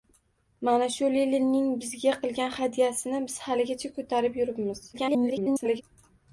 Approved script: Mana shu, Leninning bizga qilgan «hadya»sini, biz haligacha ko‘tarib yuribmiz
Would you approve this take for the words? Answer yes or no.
no